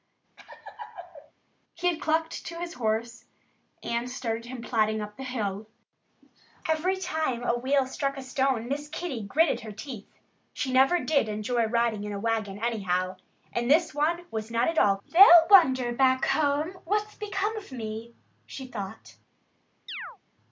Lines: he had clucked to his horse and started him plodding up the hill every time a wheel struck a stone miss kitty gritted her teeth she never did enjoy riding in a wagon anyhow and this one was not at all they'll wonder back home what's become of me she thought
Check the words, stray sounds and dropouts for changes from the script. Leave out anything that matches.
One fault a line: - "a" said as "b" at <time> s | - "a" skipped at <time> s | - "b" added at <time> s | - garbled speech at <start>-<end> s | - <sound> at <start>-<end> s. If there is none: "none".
- laugh at 0.4-1.3 s
- chirp at 19.9-20.2 s